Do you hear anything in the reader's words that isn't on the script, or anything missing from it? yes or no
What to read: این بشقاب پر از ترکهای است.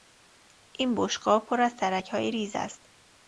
yes